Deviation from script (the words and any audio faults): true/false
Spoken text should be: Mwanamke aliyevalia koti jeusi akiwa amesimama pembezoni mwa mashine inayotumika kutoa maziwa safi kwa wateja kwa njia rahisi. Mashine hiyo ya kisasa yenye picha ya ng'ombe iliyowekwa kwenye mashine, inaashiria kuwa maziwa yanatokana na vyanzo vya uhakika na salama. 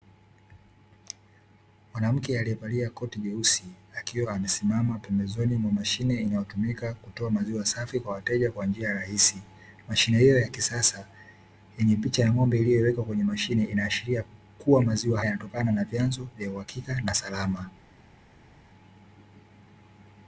false